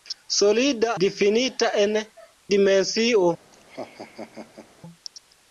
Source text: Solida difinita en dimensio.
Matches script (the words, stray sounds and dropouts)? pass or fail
fail